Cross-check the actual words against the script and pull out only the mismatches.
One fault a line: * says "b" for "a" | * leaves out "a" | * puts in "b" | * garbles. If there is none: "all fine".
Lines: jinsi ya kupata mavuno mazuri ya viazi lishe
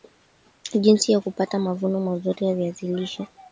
all fine